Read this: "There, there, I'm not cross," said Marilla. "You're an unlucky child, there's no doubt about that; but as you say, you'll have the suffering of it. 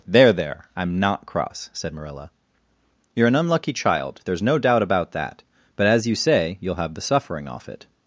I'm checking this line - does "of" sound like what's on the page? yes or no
no